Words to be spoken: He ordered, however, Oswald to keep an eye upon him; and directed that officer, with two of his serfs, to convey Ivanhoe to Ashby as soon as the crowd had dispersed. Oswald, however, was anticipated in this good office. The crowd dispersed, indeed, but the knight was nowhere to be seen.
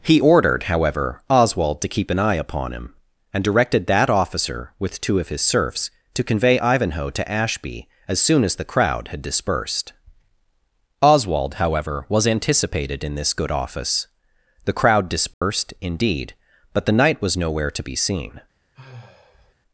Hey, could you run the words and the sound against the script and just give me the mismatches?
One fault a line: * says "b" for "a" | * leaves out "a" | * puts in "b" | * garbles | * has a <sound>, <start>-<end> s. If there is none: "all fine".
* has a dropout, 15.3-15.4 s
* has a sigh, 18.7-19.5 s